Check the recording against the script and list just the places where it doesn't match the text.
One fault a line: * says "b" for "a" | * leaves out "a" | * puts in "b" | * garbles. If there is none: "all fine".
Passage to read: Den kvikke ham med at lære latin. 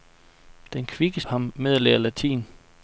all fine